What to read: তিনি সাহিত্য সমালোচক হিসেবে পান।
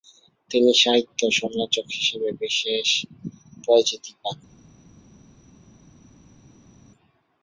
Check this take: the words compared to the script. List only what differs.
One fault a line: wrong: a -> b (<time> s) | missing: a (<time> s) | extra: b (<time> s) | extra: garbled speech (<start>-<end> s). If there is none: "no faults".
extra: বিশেষ পরিচিতি (2.4 s)